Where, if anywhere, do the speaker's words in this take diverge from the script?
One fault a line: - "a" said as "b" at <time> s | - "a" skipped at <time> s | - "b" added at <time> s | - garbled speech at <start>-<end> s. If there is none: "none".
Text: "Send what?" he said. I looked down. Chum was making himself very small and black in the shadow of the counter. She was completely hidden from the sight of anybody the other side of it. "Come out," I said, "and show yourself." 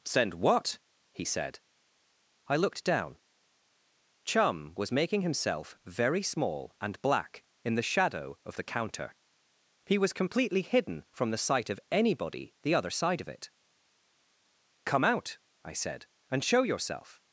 - "She" said as "He" at 9.8 s